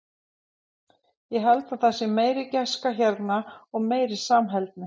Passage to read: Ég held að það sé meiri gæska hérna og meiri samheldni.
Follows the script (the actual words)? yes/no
yes